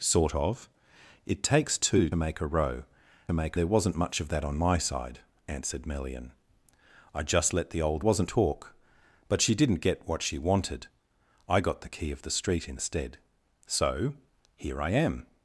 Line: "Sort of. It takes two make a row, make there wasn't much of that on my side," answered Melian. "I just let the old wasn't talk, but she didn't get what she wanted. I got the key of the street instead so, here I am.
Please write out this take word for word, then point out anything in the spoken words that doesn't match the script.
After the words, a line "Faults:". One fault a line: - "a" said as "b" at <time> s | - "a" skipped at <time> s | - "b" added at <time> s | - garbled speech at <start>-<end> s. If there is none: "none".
"Sort of. It takes two make a row, make there wasn't much of that on my side," answered Melian. "I just let the old wasn't talk, but she didn't get what she wanted. I got the key of the street instead so, here I am.
Faults:
none